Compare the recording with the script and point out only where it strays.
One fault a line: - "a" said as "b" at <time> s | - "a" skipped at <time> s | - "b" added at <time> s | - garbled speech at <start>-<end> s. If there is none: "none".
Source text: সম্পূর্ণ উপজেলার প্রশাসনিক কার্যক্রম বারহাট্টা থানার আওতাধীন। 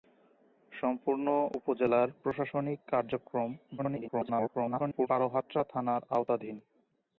- garbled speech at 3.8-5.1 s